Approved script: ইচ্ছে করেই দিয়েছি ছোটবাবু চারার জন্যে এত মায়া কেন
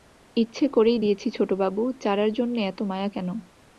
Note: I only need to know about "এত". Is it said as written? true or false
true